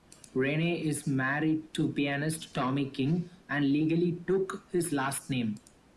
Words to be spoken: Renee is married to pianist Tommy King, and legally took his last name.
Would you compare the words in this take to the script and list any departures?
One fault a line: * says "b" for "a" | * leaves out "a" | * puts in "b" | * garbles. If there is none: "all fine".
all fine